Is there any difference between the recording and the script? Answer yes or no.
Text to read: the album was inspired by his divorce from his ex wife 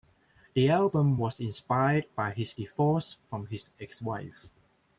no